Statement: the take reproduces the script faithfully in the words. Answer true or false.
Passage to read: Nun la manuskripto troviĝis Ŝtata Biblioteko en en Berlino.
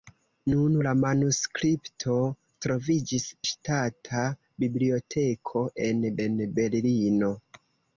true